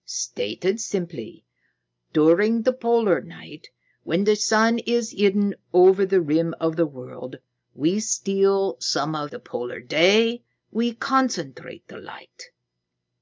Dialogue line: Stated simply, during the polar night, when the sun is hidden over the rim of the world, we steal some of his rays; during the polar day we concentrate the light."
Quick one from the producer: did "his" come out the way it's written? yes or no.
no